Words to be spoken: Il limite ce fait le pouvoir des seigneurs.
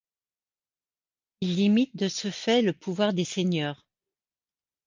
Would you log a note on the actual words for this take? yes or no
yes